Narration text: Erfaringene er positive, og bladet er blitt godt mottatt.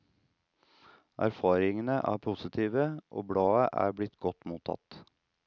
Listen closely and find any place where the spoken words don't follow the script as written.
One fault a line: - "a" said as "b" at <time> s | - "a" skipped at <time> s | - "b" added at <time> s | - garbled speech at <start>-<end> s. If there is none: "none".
none